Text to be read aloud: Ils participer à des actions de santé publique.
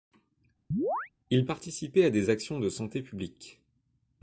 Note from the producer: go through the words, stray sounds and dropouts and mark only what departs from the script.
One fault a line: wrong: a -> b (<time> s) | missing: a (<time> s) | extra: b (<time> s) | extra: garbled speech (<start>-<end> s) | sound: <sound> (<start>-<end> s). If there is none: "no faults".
sound: chirp (0.7-1.1 s)